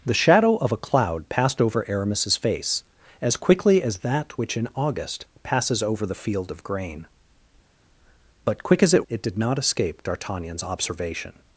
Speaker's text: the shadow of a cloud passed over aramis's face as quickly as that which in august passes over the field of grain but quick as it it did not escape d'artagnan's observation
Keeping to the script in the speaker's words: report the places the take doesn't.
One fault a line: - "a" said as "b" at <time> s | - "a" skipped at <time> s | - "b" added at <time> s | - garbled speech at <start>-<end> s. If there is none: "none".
none